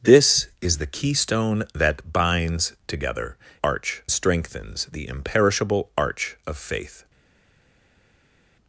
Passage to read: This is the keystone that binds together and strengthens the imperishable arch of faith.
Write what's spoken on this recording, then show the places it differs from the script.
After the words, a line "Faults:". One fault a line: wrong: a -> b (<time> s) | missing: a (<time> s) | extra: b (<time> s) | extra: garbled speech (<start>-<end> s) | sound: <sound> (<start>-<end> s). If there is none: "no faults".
This is the keystone that binds together arch strengthens the imperishable arch of faith.
Faults:
wrong: and -> arch (3.6 s)